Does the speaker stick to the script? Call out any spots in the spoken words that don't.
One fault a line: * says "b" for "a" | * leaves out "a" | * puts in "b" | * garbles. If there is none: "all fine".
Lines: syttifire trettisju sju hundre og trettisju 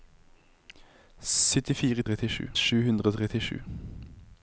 all fine